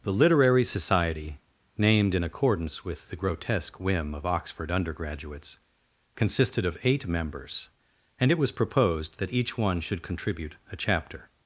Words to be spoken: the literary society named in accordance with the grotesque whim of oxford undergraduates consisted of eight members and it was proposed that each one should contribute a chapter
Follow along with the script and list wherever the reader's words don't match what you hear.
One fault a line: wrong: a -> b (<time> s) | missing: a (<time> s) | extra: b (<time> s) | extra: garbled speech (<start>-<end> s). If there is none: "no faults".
no faults